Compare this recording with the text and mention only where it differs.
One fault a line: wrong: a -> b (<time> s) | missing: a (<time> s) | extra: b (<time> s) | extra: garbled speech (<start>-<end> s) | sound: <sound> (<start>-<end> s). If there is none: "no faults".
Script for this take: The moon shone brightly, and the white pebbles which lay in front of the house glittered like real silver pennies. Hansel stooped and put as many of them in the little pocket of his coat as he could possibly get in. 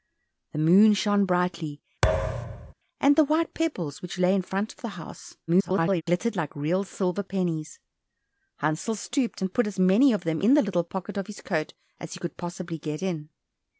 sound: thud (2.0-2.7 s)
extra: garbled speech (5.5-6.0 s)